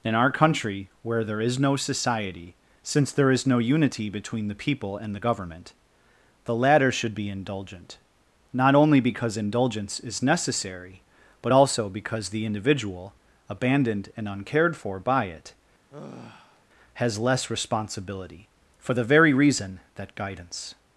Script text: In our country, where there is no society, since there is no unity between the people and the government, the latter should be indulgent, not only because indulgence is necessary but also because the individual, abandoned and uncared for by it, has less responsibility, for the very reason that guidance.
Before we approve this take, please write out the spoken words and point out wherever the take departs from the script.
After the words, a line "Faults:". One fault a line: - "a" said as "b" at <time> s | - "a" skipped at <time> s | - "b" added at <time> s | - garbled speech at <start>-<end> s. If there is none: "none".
In our country, where there is no society, since there is no unity between the people and the government, the latter should be indulgent, not only because indulgence is necessary but also because the individual, abandoned and uncared for by it, has less responsibility, for the very reason that guidance.
Faults:
none